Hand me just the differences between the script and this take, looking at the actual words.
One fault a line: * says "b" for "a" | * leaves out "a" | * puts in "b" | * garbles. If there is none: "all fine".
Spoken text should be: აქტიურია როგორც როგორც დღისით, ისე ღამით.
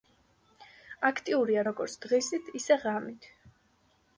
* leaves out "როგორც"